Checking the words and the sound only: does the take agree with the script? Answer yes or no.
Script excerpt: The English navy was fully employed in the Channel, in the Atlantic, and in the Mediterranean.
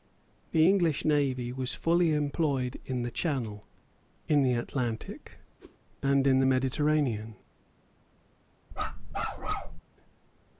no